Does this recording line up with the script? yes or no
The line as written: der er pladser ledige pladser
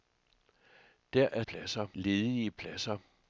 yes